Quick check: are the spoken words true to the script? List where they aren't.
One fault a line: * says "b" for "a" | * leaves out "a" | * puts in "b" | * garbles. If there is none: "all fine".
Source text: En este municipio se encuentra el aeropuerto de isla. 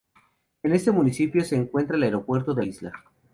all fine